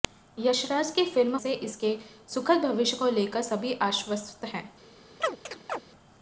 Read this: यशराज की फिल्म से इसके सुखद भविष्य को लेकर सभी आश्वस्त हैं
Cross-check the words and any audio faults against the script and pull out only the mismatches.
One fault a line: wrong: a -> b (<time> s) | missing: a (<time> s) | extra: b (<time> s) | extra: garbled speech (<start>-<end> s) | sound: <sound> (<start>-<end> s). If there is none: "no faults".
sound: chirp (5.2-5.8 s)